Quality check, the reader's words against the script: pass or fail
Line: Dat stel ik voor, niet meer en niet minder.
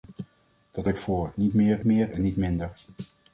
fail